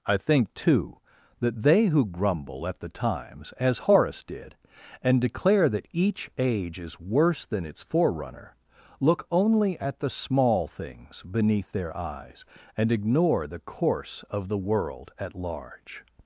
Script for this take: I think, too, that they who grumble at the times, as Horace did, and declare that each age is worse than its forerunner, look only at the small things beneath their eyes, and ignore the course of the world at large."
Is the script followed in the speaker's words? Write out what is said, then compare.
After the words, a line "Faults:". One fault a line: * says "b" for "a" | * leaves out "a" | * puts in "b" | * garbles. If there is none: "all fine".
I think, too, that they who grumble at the times, as Horace did, and declare that each age is worse than its forerunner, look only at the small things beneath their eyes, and ignore the course of the world at large."
Faults:
all fine